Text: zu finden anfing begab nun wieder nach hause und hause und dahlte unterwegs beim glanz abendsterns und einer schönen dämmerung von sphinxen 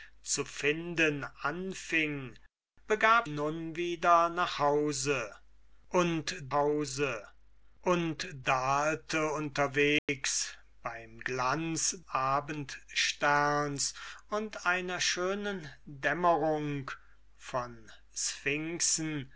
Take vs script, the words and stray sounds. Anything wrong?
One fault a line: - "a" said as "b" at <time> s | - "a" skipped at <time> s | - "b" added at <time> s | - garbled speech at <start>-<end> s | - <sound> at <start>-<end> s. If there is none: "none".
- dropout at 10.0-10.1 s